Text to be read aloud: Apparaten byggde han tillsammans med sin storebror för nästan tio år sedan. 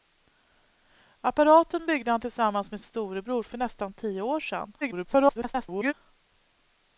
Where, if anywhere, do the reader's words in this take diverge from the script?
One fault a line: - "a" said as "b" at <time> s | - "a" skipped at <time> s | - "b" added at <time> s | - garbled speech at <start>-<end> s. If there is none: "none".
- "sin" skipped at 2.8 s
- garbled speech at 4.8-5.9 s